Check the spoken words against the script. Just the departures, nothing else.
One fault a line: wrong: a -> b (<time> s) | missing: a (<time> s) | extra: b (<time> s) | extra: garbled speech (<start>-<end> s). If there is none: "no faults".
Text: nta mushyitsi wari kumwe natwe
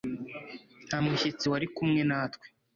no faults